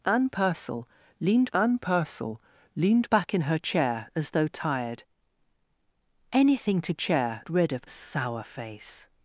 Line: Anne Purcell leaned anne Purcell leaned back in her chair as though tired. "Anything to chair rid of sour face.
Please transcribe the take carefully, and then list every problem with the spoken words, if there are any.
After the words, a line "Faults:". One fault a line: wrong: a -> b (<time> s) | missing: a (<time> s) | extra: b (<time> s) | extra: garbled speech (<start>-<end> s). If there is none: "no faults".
Anne Purcell leaned anne Purcell leaned back in her chair as though tired. "Anything to chair rid of sour face.
Faults:
no faults